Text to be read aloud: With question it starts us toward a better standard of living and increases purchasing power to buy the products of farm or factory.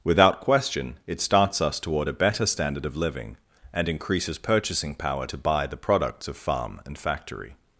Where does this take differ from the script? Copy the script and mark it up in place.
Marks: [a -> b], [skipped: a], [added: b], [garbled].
[With -> Without] question it starts us toward a better standard of living and increases purchasing power to buy the products of farm [or -> and] factory.